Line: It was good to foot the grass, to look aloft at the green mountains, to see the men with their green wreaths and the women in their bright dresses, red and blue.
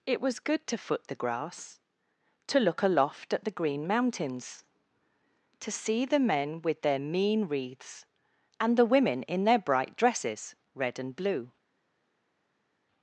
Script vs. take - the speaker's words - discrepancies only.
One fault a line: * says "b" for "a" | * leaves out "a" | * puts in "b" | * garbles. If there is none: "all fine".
* says "mean" for "green"